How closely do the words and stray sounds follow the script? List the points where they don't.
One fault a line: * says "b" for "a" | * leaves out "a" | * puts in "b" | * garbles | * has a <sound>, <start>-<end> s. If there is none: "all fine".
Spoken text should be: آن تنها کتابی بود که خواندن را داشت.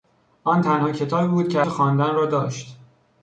all fine